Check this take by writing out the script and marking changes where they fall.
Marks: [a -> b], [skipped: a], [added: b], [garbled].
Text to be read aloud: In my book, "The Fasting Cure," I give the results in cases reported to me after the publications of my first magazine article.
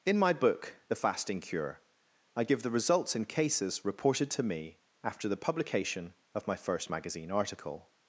In my book, "The Fasting Cure," I give the results in cases reported to me after the [publications -> publication] of my first magazine article.